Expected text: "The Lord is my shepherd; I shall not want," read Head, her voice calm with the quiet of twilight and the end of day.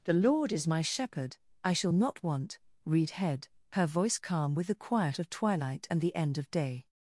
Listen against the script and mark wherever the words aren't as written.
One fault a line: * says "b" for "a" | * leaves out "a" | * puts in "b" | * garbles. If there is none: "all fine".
all fine